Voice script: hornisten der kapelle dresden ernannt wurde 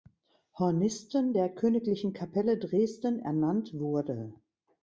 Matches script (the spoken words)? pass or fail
fail